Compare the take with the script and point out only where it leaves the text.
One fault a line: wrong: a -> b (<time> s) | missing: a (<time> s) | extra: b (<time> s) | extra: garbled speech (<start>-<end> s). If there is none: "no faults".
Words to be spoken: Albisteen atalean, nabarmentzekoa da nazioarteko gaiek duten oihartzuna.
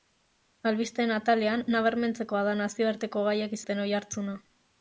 no faults